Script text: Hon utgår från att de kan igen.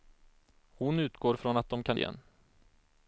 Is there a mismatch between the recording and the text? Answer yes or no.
no